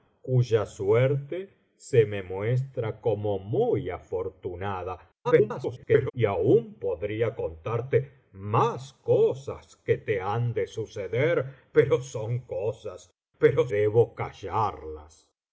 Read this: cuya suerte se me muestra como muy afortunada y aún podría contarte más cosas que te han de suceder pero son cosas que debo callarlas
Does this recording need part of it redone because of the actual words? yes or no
yes